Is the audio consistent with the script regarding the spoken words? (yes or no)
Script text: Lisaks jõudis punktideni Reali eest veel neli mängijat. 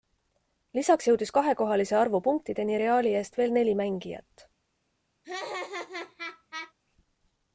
no